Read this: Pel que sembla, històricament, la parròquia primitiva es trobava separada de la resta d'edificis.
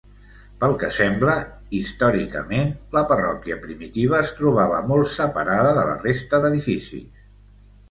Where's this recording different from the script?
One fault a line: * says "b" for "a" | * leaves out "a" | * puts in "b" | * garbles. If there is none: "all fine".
* puts in "molt"